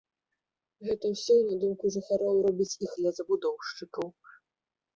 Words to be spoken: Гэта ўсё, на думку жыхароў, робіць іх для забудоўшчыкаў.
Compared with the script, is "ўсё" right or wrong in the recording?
right